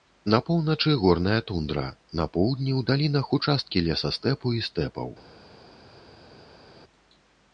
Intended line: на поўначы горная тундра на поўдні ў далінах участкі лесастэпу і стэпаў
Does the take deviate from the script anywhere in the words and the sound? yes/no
no